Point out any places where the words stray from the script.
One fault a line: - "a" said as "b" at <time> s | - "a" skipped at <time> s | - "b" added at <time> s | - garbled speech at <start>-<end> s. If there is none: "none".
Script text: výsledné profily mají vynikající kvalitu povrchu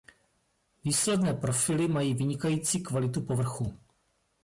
none